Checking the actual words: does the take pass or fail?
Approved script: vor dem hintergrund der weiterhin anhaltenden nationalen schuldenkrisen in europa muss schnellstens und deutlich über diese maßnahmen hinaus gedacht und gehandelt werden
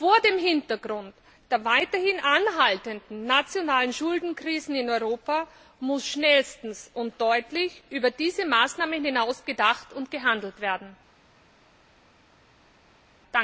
pass